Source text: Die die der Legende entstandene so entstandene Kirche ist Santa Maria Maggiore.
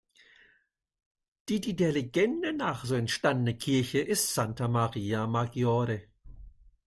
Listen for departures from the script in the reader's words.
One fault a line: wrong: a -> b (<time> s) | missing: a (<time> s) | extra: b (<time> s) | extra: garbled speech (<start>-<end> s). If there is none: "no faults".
wrong: entstandene -> nach (2.5 s)